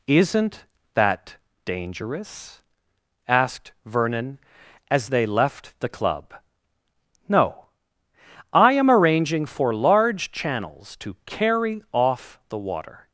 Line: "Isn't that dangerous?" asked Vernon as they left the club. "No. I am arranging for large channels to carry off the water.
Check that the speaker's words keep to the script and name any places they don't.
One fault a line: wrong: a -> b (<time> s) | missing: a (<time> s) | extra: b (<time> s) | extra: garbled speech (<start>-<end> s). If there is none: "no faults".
no faults